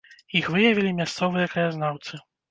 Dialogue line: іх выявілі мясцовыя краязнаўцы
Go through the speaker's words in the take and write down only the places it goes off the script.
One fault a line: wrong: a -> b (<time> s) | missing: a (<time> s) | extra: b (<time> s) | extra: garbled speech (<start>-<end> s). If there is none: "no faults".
no faults